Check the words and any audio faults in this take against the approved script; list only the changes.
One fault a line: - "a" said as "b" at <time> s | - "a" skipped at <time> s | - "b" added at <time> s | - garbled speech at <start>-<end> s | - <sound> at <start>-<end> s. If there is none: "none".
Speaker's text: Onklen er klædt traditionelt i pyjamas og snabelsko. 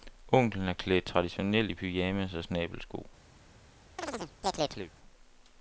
- chirp at 4.0-4.9 s